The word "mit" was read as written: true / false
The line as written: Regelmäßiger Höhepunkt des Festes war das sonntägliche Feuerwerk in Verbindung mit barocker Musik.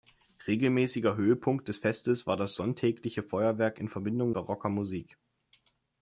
false